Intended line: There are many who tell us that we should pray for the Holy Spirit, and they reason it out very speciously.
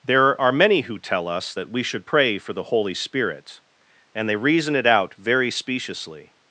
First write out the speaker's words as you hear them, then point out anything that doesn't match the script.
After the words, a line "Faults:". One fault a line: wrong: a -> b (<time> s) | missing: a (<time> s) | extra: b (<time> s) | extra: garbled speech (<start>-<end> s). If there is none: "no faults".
There are many who tell us that we should pray for the Holy Spirit, and they reason it out very speciously.
Faults:
no faults